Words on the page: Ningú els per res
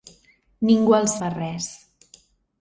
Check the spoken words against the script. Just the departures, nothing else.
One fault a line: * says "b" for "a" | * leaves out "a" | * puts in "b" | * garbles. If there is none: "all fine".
all fine